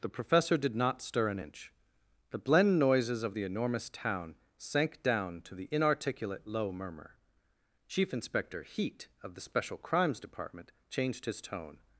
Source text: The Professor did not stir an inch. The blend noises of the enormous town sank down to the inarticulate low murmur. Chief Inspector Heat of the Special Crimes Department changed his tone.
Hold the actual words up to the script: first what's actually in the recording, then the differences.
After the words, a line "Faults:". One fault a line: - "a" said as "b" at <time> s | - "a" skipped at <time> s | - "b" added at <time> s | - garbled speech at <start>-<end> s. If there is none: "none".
The Professor did not stir an inch. The blend noises of the enormous town sank down to the inarticulate low murmur. Chief Inspector Heat of the Special Crimes Department changed his tone.
Faults:
none